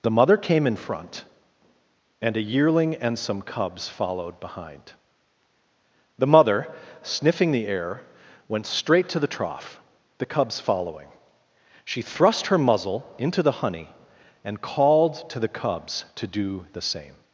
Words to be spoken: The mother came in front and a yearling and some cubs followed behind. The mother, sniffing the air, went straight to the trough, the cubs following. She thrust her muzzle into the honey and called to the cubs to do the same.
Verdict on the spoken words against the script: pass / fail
pass